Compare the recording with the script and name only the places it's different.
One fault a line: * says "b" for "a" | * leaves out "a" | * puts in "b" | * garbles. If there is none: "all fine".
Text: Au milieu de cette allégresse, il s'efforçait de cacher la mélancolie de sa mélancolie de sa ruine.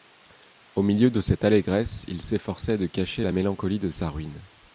* leaves out "mélancolie de sa"